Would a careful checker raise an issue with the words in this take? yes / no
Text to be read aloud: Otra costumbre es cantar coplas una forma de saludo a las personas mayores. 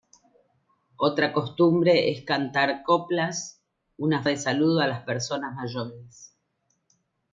yes